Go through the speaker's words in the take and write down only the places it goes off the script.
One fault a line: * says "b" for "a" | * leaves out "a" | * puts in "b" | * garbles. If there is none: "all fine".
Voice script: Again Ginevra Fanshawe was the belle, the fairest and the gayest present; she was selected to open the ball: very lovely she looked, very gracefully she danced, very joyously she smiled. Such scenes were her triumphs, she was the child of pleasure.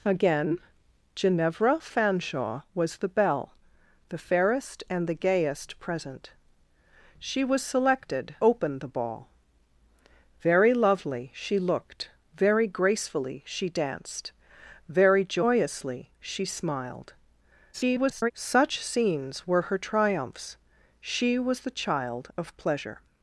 * leaves out "to"
* garbles